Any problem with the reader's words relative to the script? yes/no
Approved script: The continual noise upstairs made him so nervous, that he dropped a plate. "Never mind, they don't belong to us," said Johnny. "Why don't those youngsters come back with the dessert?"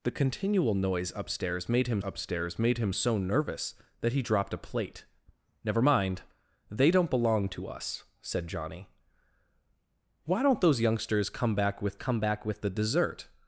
yes